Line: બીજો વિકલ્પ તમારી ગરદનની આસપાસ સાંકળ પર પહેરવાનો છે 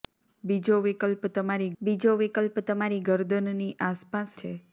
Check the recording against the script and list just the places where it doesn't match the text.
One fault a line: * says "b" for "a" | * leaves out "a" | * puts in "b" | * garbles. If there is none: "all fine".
* says "બીજો વિકલ્પ તમારી ગરદનની આસપાસ" for "ગરદનની આસપાસ સાંકળ પર પહેરવાનો"